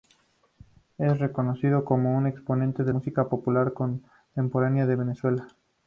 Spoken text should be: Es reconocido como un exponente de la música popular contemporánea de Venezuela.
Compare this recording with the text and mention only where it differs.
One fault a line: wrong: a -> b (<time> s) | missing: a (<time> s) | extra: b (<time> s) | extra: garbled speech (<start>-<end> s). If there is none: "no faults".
missing: la (2.9 s)